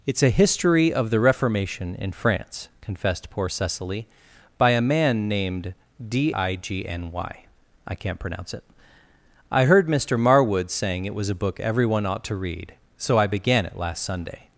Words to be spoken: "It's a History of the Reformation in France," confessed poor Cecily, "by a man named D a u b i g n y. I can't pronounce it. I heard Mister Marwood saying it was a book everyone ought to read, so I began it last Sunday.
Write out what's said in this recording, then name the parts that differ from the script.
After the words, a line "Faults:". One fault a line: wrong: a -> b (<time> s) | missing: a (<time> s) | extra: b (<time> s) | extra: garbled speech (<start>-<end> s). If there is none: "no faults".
"It's a History of the Reformation in France," confessed poor Cecily, "by a man named D i g n y. I can't pronounce it. I heard Mister Marwood saying it was a book everyone ought to read, so I began it last Sunday.
Faults:
missing: a u b (6.3 s)